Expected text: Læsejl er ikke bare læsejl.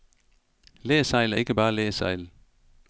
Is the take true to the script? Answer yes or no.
yes